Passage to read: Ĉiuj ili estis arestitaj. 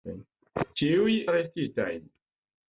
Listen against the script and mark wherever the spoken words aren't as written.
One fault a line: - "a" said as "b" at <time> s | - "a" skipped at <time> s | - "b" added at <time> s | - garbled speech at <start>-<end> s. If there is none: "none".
- "ili estis" skipped at 1.1 s